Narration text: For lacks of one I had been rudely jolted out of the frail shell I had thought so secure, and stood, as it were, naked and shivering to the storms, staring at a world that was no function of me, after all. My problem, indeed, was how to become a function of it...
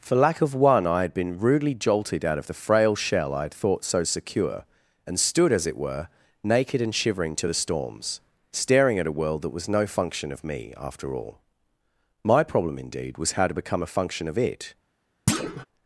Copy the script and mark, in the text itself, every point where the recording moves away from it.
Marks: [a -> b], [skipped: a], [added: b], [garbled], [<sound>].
For [lacks -> lack] of one I had been rudely jolted out of the frail shell I had thought so secure, and stood, as it were, naked and shivering to the storms, staring at a world that was no function of me, after all. My problem, indeed, was how to become a function of it... [thud]